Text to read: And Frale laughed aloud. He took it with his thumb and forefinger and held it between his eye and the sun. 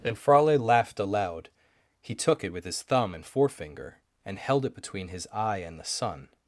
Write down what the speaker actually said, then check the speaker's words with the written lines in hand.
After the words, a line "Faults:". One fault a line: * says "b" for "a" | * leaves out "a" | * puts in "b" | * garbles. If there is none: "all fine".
And Frale laughed aloud. He took it with his thumb and forefinger and held it between his eye and the sun.
Faults:
all fine